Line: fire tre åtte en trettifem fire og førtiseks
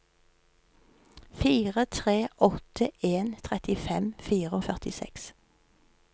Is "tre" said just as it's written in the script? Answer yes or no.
yes